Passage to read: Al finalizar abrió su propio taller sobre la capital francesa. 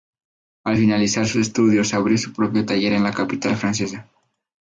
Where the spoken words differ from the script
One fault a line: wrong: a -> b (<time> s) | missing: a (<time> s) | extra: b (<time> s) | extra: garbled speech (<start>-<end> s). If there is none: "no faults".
extra: sus estudios (1.2 s)
wrong: sobre -> en (2.9 s)